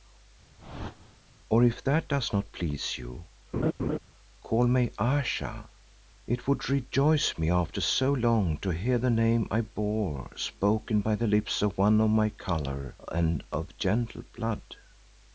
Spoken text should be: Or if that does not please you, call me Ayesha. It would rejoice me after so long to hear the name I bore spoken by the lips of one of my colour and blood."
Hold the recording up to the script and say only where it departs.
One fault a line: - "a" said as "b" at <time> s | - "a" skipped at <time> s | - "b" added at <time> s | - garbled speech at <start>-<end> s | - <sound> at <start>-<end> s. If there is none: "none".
- whoosh at 0.6-1.2 s
- laugh at 3.5-4.0 s
- "of gentle" added at 13.5 s